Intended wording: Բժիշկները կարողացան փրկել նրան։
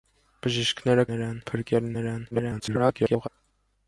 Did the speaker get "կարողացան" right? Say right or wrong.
wrong